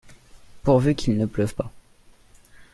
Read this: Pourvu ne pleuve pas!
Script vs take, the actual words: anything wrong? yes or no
yes